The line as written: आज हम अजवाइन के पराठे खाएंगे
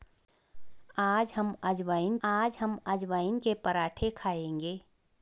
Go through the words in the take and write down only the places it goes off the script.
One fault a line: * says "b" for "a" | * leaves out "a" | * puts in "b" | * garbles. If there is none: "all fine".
* puts in "आज हम अजवाइन"